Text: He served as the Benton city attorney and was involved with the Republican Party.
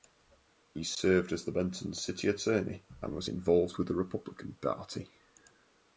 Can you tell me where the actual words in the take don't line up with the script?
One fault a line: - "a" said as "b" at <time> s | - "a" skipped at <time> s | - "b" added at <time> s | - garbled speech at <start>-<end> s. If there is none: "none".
none